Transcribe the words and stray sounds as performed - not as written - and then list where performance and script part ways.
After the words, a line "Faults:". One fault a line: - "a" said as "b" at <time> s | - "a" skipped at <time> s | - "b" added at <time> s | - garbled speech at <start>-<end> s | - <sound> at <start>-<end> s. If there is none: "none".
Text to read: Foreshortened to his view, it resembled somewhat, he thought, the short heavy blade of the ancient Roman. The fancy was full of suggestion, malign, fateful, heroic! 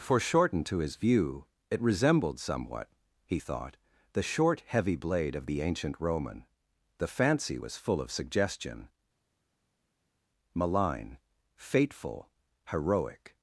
Foreshortened to his view, it resembled somewhat, he thought, the short heavy blade of the ancient Roman. The fancy was full of suggestion, malign, fateful, heroic!
Faults:
none